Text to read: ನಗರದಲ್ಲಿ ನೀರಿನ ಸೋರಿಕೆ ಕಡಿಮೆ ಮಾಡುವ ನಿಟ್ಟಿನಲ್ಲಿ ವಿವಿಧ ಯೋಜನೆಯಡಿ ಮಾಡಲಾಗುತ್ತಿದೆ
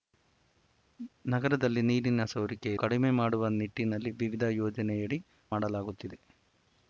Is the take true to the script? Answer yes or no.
yes